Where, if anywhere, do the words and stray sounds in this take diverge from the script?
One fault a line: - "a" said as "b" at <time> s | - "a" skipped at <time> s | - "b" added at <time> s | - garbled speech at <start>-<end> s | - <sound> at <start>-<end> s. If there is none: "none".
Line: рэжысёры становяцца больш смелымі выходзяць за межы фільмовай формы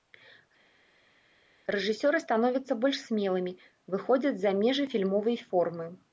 none